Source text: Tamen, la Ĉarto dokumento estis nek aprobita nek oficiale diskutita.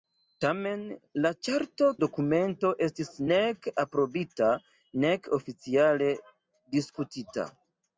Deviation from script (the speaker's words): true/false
false